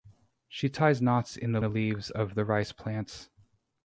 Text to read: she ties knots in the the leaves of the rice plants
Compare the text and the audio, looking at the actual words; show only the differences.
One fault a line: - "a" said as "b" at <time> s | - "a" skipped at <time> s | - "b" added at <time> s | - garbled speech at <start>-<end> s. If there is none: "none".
none